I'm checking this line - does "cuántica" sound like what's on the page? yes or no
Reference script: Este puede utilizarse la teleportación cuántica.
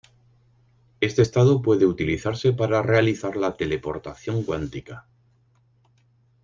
yes